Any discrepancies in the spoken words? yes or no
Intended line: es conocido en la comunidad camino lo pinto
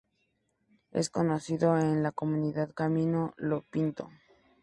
no